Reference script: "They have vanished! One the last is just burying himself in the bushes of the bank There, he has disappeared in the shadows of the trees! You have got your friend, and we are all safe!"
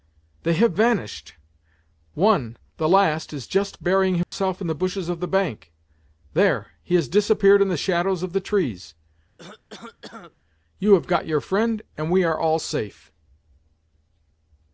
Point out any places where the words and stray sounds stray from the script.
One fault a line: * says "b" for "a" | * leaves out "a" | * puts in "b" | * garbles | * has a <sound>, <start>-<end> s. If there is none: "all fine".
* has a dropout, 4.2-4.3 s
* has a cough, 9.4-10.4 s